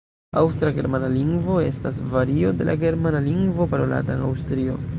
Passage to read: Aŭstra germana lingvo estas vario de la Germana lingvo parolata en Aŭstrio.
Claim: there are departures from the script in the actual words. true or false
false